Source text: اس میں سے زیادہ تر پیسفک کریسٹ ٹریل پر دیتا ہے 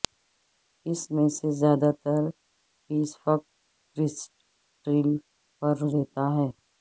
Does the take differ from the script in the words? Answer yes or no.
no